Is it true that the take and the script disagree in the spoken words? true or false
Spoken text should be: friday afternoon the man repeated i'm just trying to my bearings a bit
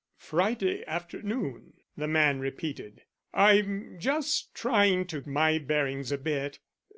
false